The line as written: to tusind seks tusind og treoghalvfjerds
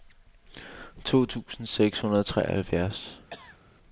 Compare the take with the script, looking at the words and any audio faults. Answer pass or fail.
fail